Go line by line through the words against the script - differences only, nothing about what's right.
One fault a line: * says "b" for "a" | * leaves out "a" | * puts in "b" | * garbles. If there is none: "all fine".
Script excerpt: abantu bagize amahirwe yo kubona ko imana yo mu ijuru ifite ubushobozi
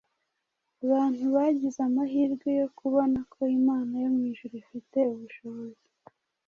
all fine